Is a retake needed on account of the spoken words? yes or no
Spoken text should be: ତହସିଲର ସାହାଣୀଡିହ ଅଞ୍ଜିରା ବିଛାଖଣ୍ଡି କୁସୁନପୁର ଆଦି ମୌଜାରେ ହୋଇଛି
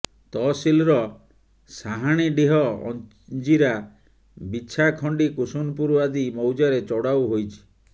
yes